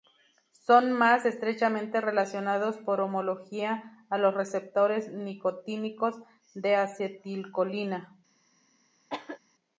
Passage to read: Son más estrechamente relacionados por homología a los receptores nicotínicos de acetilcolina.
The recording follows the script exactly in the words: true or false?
true